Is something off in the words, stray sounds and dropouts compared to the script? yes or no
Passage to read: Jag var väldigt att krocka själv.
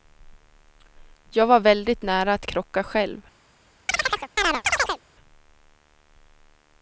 yes